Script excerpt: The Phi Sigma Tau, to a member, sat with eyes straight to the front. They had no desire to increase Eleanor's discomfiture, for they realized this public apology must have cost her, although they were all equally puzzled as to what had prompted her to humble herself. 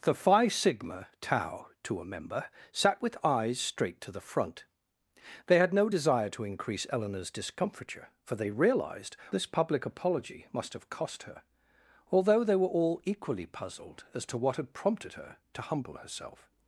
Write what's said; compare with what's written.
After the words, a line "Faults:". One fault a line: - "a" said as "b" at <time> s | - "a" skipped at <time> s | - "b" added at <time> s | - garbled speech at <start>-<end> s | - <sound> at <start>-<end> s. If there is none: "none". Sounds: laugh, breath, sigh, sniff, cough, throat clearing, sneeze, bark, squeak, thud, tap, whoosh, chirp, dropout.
The Phi Sigma Tau, to a member, sat with eyes straight to the front. They had no desire to increase Eleanor's discomfiture, for they realized this public apology must have cost her, although they were all equally puzzled as to what had prompted her to humble herself.
Faults:
none